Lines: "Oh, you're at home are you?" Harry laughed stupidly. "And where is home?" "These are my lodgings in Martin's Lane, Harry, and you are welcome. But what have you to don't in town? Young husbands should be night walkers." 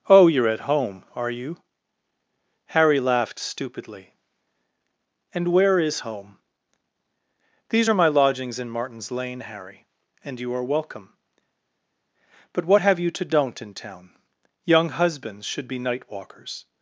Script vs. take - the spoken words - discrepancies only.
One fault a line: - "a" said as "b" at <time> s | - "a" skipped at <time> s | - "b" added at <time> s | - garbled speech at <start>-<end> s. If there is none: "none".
none